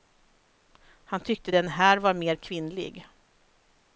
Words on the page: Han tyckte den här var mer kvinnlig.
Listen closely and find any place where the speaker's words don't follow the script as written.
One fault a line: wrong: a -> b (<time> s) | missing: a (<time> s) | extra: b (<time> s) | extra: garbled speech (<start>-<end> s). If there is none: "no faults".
no faults